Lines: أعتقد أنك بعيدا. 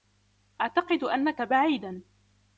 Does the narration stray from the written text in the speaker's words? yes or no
no